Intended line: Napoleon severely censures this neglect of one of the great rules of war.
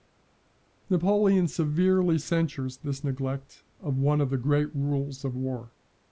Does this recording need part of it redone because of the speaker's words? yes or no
no